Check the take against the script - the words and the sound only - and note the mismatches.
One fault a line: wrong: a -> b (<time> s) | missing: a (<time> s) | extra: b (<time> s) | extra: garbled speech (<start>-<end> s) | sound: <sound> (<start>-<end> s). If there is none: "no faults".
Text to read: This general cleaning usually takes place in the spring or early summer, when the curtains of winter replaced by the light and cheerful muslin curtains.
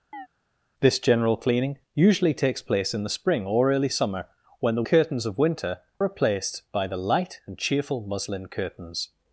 sound: chirp (0.1-0.3 s)